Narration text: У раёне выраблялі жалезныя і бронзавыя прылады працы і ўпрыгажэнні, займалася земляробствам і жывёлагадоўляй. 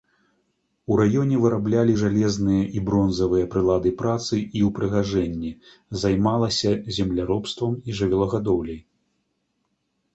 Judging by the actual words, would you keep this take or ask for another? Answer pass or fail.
pass